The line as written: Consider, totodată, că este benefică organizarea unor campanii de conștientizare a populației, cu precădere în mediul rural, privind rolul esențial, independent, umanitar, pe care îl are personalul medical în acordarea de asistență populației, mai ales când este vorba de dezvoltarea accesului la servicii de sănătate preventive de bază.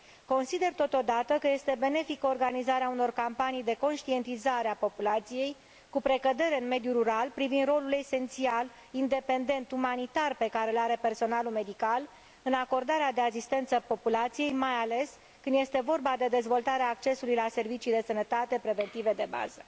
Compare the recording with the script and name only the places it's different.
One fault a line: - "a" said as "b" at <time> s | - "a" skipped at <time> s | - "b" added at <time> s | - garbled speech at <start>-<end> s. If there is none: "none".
none